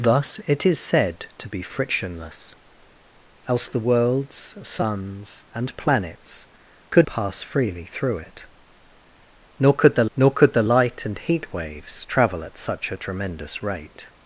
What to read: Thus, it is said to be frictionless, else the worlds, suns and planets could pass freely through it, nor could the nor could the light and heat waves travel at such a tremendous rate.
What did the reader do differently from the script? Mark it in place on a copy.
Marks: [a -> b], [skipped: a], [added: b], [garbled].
Thus, it is said to be frictionless, else the worlds, suns and planets could pass freely through it, nor could the nor could the light and heat waves travel at such a tremendous rate.